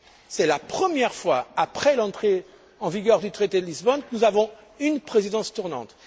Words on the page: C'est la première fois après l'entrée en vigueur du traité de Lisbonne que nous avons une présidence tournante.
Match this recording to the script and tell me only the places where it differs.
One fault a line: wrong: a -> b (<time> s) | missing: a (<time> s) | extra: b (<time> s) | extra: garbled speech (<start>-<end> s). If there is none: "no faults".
no faults